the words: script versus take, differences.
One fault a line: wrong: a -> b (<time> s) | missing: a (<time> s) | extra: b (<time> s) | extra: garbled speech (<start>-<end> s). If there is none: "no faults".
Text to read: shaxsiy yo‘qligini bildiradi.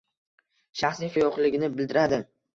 no faults